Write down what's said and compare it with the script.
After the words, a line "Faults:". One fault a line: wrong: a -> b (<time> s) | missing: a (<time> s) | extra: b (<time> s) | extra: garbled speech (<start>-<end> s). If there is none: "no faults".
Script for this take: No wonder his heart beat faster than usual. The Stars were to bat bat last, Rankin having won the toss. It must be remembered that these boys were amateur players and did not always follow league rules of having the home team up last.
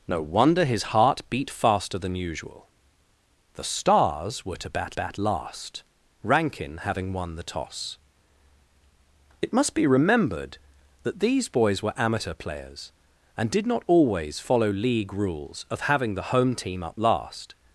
No wonder his heart beat faster than usual. The Stars were to bat bat last, Rankin having won the toss. It must be remembered that these boys were amateur players and did not always follow league rules of having the home team up last.
Faults:
no faults